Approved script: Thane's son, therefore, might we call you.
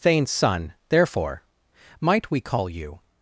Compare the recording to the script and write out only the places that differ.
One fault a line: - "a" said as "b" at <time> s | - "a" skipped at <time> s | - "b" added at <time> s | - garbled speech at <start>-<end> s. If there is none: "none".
none